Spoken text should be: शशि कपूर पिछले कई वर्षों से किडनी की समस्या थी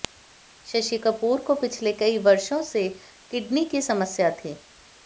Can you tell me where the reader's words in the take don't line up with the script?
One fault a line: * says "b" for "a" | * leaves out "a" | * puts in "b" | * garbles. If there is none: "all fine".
* puts in "को"